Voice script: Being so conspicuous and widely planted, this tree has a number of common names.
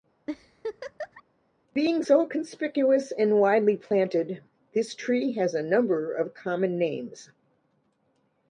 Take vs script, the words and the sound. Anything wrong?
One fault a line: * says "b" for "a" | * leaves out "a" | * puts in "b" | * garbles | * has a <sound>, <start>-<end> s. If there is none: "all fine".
* has a laugh, 0.3-1.2 s